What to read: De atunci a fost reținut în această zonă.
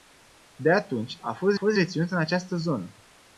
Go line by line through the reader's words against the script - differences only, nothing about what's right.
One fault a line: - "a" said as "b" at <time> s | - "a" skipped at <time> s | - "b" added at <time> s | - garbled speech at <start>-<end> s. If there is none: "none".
- "fost" added at 1.5 s